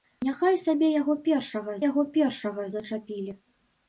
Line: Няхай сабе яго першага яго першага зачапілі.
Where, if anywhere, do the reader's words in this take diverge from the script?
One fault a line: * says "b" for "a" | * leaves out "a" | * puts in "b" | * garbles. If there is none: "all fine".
all fine